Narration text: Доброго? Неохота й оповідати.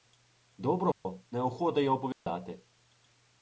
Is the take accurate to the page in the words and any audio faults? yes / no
no